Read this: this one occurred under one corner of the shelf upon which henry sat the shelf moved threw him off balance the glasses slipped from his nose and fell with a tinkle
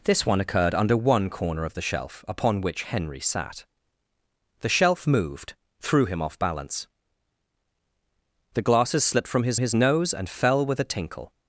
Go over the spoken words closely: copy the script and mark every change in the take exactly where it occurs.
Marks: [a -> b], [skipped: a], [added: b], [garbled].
this one occurred under one corner of the shelf upon which henry sat the shelf moved threw him off balance the glasses slipped from his [added: his] nose and fell with a tinkle